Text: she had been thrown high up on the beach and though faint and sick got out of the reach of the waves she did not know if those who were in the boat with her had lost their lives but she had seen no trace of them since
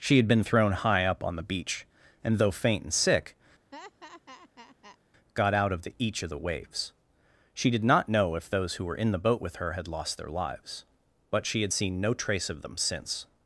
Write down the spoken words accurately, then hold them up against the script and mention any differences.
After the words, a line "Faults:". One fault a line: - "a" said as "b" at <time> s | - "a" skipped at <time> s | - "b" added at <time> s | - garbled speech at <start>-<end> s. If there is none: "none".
she had been thrown high up on the beach and though faint and sick got out of the each of the waves she did not know if those who were in the boat with her had lost their lives but she had seen no trace of them since
Faults:
- "reach" said as "each" at 6.0 s